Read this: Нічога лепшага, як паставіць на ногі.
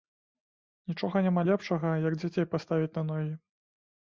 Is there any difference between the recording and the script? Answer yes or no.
yes